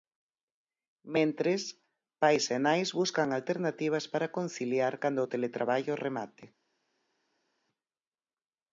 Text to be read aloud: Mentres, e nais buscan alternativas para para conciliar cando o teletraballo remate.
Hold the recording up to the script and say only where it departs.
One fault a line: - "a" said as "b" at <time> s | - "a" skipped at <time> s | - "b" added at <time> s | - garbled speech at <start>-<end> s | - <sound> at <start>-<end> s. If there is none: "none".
- "pais" added at 2.2 s
- "para" skipped at 4.3 s